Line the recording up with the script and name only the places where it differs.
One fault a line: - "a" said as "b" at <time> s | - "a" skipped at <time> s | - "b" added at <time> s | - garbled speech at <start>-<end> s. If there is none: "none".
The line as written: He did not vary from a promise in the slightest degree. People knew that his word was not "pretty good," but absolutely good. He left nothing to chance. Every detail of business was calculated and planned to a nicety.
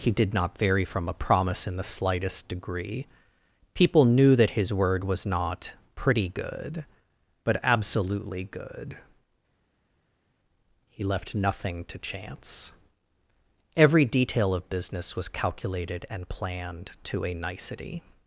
none